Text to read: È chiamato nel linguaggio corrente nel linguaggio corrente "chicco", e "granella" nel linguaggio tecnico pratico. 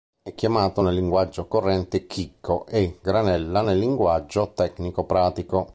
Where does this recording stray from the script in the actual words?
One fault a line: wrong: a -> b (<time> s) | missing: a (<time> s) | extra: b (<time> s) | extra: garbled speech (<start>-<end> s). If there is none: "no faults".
missing: nel linguaggio corrente (2.1 s)